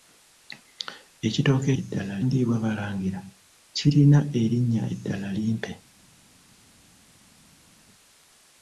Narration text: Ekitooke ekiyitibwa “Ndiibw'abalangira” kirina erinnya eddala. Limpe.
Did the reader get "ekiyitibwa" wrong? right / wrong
wrong